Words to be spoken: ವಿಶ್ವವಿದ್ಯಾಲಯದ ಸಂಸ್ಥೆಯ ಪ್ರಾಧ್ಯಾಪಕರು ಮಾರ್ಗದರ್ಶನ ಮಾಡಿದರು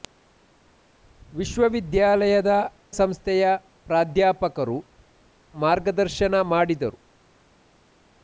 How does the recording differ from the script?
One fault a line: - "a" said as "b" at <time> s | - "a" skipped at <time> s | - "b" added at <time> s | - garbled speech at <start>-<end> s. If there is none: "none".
none